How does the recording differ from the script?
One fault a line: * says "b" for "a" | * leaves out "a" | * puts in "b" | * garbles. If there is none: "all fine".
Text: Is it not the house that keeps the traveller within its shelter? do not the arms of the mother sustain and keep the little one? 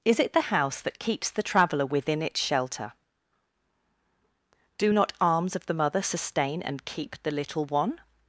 * leaves out "not"
* leaves out "the"